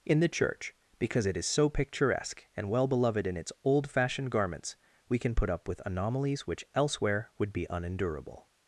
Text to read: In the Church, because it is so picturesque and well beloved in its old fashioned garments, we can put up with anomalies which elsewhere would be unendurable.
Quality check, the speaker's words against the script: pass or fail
pass